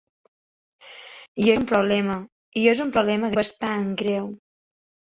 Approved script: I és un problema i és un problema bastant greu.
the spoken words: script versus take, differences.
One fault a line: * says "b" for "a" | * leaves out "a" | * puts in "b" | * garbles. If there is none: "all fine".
all fine